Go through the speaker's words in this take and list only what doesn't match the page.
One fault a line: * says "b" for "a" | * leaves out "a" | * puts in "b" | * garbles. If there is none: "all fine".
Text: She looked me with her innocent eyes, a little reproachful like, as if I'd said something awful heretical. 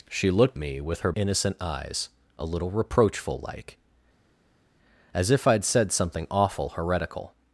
all fine